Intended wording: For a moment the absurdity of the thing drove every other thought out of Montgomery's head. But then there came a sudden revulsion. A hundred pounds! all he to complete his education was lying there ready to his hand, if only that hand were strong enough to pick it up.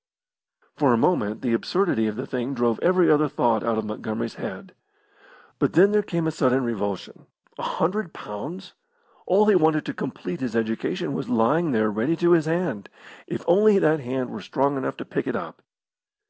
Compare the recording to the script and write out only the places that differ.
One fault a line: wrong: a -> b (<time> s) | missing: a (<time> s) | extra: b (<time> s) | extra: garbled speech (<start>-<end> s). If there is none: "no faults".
extra: wanted (9.5 s)